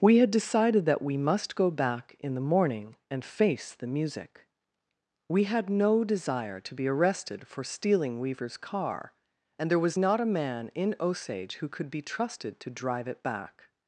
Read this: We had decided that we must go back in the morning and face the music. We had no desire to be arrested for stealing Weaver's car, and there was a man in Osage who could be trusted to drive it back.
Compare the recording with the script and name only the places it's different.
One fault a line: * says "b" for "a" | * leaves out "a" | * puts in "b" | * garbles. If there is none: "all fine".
* puts in "not"